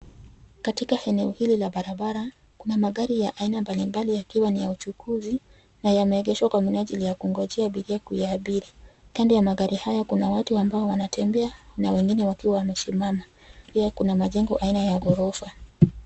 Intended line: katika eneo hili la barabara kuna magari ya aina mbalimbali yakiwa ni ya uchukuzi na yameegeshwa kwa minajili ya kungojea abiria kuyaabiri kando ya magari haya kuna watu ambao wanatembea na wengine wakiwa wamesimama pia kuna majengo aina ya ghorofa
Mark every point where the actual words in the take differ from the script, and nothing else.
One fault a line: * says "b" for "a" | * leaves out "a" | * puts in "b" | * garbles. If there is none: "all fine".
all fine